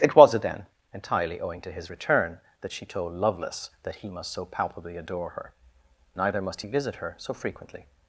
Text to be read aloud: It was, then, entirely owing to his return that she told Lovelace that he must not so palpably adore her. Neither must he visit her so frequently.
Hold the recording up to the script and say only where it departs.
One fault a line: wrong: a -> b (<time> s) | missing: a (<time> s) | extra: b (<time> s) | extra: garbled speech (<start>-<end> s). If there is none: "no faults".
missing: not (4.3 s)